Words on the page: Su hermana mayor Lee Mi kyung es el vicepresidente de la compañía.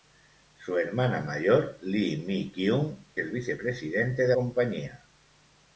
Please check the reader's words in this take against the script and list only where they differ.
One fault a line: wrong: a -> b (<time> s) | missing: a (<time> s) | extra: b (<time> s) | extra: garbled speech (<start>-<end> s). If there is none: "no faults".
missing: es (3.0 s)
missing: la (4.3 s)